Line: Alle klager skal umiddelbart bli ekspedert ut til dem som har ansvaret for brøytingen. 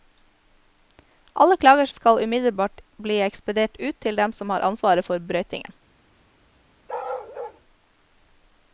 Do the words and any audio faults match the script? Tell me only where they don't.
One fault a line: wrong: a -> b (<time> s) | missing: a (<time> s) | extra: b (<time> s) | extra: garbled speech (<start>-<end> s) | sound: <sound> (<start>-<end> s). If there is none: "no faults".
sound: bark (6.9-7.6 s)